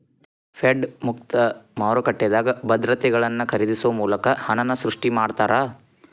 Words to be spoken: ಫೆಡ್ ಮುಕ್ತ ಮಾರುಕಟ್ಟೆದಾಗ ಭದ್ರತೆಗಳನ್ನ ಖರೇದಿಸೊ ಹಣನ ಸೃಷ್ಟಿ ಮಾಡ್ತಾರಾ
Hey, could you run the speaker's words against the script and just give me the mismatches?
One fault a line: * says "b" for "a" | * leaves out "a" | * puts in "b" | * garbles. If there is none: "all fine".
* puts in "ಮೂಲಕ"